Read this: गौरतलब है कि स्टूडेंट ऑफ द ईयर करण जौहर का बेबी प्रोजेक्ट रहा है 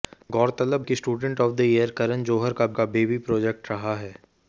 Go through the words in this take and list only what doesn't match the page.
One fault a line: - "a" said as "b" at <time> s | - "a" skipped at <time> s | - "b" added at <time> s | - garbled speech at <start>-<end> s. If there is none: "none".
- "है" skipped at 0.9 s
- "का" added at 2.7 s